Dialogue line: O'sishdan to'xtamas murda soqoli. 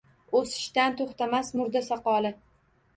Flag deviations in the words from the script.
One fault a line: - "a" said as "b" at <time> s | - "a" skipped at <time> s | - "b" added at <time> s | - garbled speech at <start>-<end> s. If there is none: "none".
none